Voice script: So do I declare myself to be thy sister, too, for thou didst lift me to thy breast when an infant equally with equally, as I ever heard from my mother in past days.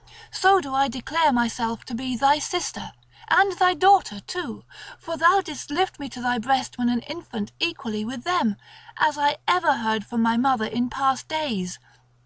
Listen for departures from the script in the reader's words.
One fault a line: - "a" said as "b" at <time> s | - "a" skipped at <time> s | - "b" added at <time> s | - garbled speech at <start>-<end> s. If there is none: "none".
- "and thy daughter" added at 3.3 s
- "equally" said as "them" at 8.2 s